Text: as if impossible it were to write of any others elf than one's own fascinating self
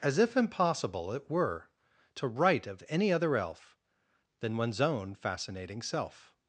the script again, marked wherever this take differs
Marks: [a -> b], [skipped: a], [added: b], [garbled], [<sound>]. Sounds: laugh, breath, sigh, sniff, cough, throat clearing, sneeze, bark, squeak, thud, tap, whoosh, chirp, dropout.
as if impossible it were to write of any [others -> other] elf than one's own fascinating self